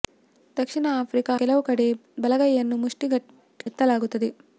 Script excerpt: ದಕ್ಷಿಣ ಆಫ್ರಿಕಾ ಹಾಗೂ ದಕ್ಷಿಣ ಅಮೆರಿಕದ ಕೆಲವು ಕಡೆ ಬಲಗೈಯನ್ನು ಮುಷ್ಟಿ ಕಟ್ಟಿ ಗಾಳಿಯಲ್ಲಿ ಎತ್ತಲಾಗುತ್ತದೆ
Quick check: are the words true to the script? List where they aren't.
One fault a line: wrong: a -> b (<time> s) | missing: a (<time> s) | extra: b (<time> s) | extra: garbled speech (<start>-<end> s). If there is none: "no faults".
missing: ಹಾಗೂ ದಕ್ಷಿಣ ಅಮೆರಿಕದ (1.3 s)
missing: ಕಟ್ಟಿ ಗಾಳಿಯಲ್ಲಿ (3.1 s)